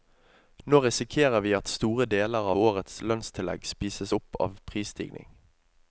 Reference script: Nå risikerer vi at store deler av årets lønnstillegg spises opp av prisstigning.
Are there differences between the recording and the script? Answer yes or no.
yes